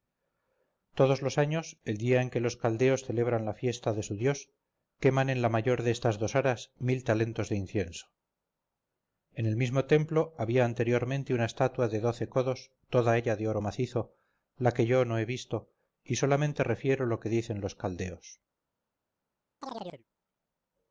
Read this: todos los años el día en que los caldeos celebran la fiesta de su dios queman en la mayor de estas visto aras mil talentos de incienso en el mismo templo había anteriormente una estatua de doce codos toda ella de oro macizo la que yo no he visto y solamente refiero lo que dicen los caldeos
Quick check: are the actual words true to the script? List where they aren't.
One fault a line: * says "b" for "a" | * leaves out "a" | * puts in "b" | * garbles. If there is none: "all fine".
* says "dos" for "visto"